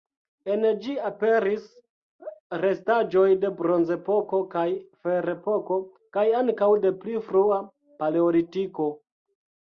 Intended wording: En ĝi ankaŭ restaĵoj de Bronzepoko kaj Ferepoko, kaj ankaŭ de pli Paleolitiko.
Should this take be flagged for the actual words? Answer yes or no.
yes